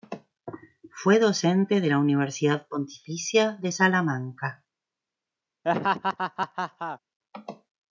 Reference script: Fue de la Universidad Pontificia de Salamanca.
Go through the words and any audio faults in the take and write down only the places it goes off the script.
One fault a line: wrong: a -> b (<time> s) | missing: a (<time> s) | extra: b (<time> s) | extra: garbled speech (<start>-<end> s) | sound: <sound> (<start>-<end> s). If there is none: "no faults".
extra: docente (1.2 s)
sound: laugh (5.6-7.0 s)